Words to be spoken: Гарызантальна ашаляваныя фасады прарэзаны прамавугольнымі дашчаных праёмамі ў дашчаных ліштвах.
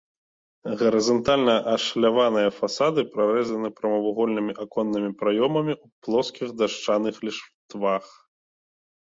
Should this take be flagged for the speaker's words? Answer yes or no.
yes